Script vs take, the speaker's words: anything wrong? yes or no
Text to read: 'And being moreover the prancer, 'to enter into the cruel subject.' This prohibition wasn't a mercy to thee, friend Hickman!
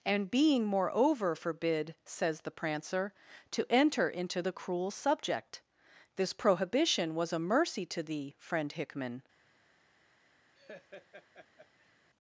yes